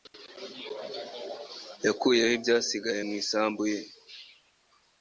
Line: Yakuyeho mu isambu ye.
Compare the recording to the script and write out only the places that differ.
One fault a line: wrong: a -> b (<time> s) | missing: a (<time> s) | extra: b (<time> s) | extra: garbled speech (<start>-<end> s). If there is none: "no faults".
extra: ibyasigaye (2.4 s)